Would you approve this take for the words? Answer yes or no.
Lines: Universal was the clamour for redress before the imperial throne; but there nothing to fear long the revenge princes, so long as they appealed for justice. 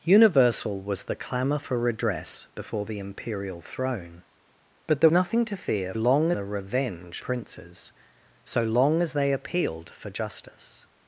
yes